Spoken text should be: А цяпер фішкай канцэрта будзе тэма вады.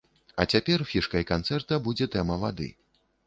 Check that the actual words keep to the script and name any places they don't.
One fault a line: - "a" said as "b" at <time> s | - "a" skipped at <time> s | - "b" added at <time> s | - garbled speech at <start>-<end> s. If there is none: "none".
none